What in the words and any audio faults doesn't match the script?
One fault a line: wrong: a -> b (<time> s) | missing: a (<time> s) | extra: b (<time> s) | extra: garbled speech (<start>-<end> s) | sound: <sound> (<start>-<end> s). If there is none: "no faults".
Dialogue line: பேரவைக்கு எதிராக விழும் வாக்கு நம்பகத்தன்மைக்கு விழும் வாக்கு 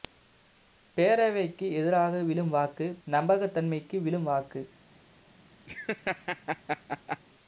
sound: laugh (5.7-7.2 s)